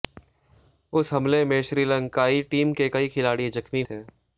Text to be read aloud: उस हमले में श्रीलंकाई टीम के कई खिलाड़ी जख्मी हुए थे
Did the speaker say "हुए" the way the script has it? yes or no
no